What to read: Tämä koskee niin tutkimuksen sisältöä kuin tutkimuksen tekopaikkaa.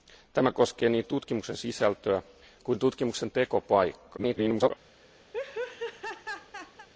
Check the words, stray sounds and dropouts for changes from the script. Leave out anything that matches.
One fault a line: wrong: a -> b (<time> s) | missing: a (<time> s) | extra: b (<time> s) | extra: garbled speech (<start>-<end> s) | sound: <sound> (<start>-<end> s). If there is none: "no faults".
extra: garbled speech (4.2-4.7 s)
sound: laugh (5.3-6.9 s)